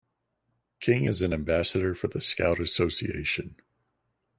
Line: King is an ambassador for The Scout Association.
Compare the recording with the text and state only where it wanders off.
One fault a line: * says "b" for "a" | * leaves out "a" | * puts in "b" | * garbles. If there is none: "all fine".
all fine